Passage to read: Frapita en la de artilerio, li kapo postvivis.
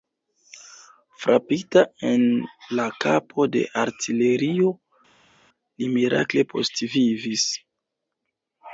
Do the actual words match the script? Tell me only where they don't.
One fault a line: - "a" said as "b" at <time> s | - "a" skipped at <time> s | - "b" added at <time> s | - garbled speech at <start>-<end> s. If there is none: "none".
- "kapo" added at 3.0 s
- "kapo" said as "mirakle" at 6.0 s